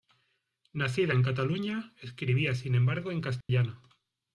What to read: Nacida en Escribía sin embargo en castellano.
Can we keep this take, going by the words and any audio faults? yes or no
no